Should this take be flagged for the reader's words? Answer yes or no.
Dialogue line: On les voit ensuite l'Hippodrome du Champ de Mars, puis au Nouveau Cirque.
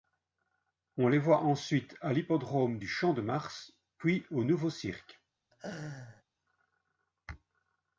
yes